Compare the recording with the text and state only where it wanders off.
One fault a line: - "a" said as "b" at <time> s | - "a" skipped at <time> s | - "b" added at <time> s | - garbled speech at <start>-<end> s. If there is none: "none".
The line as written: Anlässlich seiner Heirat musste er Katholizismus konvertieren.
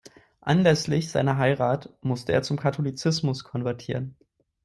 - "zum" added at 2.4 s